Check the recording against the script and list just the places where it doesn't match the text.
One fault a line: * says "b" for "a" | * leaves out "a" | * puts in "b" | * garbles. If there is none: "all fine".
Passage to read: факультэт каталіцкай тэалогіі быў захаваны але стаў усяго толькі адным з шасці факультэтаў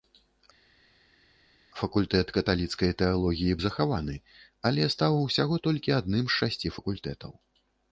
* leaves out "быў"